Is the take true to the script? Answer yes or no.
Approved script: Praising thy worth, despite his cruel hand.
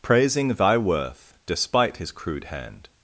no